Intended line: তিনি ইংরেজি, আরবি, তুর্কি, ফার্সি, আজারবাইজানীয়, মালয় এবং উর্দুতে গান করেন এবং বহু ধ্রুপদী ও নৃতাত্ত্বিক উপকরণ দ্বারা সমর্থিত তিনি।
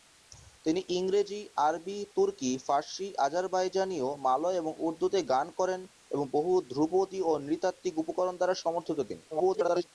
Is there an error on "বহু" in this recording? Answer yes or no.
no